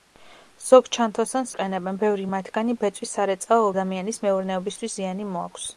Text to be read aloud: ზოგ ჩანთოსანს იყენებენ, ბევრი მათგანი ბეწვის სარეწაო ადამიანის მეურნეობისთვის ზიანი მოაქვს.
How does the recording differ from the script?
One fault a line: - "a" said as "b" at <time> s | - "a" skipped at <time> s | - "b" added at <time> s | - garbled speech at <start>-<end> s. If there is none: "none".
none